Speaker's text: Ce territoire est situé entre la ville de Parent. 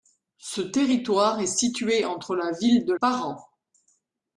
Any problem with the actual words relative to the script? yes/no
no